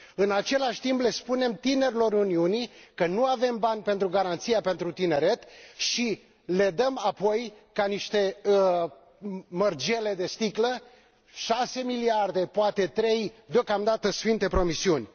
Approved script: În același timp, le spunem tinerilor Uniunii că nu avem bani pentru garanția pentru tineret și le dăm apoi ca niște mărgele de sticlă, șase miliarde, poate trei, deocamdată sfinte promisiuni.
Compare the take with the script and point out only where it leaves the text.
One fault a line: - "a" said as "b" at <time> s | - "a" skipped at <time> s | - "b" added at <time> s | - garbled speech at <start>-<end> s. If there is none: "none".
none